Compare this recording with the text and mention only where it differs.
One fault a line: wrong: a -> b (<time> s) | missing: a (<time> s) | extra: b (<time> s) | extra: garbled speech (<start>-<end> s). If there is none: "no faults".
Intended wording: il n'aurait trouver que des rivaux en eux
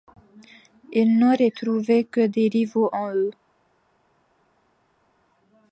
no faults